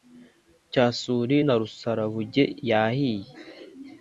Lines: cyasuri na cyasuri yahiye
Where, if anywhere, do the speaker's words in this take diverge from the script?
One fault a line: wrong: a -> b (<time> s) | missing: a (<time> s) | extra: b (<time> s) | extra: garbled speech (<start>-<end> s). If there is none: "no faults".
wrong: cyasuri -> rusarabuge (1.6 s)